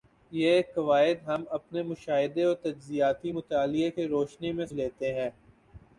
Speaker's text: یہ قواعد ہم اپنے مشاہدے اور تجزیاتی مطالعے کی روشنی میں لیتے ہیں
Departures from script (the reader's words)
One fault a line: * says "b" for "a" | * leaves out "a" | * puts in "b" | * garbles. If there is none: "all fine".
all fine